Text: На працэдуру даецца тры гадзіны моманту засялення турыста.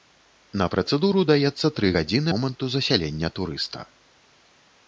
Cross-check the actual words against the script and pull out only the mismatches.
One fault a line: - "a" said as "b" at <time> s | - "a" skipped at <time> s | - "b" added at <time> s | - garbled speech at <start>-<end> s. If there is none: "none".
none